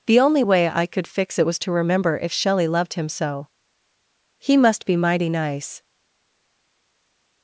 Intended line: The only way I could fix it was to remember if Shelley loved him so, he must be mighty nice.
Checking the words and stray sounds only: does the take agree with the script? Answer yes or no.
yes